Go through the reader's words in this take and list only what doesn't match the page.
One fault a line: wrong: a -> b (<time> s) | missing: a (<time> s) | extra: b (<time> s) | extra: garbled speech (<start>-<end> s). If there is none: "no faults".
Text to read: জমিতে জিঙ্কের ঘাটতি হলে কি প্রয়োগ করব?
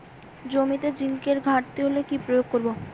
no faults